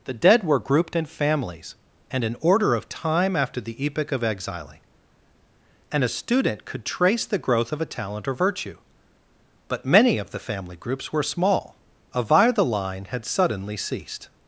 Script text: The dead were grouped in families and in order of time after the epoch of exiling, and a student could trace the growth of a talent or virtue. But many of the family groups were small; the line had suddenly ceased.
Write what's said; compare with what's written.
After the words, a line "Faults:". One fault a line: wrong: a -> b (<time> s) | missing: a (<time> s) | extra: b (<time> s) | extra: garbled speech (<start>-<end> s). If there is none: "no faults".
The dead were grouped in families and in order of time after the epoch of exiling, and a student could trace the growth of a talent or virtue. But many of the family groups were small; a via the line had suddenly ceased.
Faults:
extra: a via (12.1 s)